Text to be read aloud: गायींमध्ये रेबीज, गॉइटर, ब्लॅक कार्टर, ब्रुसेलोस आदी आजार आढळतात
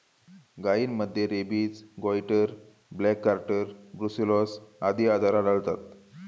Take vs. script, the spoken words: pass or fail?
pass